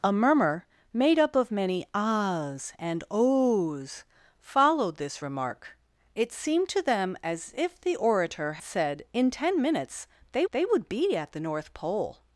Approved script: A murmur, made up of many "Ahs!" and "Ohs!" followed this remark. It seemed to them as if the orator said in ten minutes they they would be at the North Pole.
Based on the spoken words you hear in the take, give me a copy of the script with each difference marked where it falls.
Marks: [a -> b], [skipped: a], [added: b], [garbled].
A murmur, made up of many "Ahs!" and "Ohs!" followed this remark. It seemed to them as if the orator said in ten minutes they they would be at the North Pole.